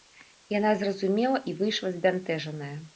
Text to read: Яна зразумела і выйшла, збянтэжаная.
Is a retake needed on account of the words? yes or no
no